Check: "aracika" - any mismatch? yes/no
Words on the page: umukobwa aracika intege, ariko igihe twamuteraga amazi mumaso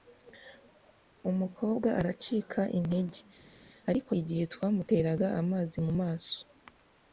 no